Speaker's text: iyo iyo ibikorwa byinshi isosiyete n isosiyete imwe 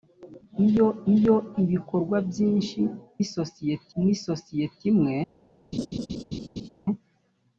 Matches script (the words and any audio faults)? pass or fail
fail